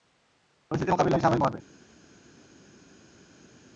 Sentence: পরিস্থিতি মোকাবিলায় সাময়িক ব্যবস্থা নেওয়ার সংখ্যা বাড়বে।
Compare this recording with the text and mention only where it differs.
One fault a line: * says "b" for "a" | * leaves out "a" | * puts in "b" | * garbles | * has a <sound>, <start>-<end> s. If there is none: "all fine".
* leaves out "ব্যবস্থা নেওয়ার সংখ্যা"